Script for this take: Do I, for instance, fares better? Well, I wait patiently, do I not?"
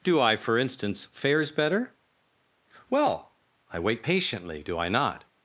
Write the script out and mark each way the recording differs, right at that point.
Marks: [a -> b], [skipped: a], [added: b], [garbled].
Do I, for instance, fares better? Well, I wait patiently, do I not?"